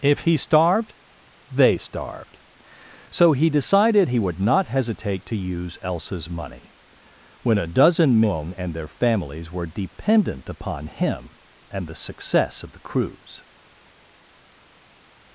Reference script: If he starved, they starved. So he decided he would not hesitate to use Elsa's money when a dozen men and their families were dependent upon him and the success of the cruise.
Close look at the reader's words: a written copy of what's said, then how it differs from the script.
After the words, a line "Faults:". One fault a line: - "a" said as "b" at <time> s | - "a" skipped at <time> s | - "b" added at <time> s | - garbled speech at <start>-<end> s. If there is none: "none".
If he starved, they starved. So he decided he would not hesitate to use Elsa's money when a dozen men and their families were dependent upon him and the success of the cruise.
Faults:
none